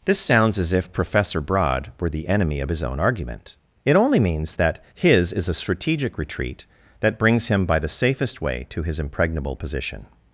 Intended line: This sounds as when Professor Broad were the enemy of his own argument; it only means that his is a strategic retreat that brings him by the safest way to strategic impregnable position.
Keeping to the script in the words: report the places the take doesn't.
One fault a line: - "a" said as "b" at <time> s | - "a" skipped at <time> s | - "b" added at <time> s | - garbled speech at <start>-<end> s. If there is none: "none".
- "when" said as "if" at 0.7 s
- "strategic" said as "his" at 8.8 s